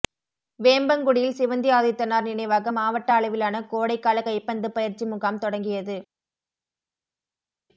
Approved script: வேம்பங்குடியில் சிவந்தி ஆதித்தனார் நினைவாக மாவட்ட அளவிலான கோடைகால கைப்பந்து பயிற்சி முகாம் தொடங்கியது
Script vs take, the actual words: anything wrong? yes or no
no